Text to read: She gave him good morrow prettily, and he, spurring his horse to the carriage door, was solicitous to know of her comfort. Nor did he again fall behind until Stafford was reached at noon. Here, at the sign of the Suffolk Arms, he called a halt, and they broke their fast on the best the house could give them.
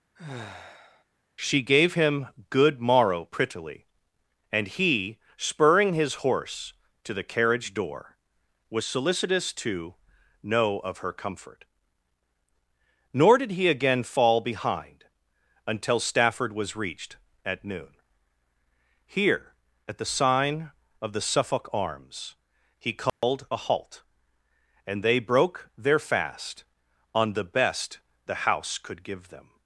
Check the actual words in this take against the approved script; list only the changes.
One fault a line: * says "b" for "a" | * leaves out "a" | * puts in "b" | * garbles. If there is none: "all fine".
all fine